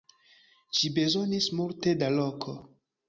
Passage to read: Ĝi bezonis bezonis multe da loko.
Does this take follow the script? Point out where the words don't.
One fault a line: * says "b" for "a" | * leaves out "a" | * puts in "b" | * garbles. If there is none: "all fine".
* leaves out "bezonis"